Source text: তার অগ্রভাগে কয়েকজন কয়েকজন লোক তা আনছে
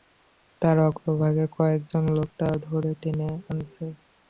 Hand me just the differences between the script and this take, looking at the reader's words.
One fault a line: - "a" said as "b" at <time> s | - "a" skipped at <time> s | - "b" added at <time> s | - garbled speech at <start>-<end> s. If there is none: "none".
- "কয়েকজন" skipped at 2.0 s
- "ধরে টেনে" added at 2.6 s